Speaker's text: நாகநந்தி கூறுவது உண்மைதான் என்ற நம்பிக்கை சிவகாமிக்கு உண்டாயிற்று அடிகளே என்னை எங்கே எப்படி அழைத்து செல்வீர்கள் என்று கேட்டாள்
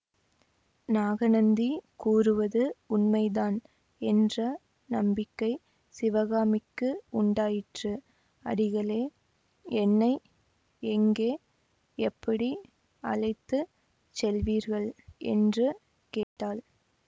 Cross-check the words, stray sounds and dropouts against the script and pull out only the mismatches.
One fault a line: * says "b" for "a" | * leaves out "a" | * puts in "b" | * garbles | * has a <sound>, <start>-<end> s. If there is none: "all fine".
* has a dropout, 16.2-16.4 s